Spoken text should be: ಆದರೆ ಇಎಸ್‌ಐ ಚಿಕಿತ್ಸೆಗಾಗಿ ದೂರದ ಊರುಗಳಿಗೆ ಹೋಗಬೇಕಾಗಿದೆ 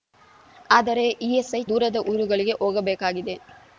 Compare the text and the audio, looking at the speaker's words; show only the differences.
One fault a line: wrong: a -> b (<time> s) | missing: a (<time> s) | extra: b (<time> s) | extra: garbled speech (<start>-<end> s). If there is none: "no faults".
missing: ಚಿಕಿತ್ಸೆಗಾಗಿ (1.6 s)